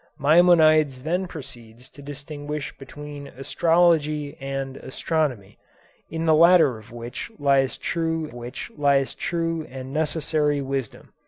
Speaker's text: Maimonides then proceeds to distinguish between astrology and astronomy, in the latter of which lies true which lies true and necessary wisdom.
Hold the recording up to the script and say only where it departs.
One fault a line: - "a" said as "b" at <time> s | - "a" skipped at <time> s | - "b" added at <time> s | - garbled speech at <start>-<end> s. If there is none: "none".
none